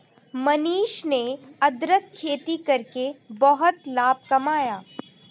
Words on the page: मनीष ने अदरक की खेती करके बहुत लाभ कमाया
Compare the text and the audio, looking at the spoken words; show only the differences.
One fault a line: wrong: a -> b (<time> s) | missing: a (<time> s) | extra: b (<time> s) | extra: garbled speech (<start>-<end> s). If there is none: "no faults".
missing: की (2.1 s)